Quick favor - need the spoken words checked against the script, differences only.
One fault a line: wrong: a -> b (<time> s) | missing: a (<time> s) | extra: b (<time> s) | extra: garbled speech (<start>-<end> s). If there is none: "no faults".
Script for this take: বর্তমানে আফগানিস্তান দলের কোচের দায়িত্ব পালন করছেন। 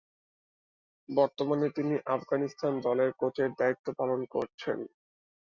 extra: তিনি (1.7 s)